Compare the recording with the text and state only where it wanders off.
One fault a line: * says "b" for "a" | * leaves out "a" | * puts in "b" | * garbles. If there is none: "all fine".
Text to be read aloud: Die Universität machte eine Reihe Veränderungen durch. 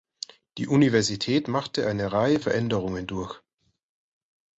all fine